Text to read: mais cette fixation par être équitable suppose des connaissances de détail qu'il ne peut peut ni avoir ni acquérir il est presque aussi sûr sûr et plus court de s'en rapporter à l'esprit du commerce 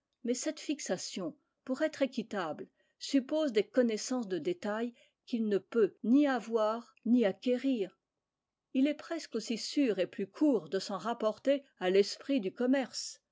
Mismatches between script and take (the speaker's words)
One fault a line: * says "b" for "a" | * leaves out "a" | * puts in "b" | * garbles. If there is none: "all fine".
* says "pour" for "par"
* leaves out "peut"
* leaves out "sûr"